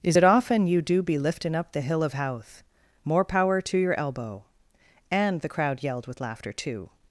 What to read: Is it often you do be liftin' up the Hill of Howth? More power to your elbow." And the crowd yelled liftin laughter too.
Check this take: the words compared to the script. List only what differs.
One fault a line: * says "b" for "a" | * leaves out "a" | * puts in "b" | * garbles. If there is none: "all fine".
* says "with" for "liftin"